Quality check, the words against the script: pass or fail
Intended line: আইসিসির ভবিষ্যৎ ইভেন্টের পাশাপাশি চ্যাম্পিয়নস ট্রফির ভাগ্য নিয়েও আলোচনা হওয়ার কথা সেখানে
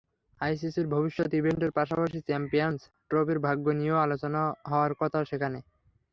pass